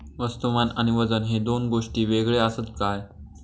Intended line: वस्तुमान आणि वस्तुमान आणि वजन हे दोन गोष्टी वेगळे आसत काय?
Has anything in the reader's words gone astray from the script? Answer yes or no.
yes